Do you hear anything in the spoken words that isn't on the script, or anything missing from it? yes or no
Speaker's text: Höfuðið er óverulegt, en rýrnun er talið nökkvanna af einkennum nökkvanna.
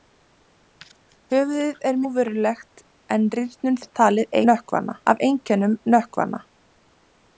no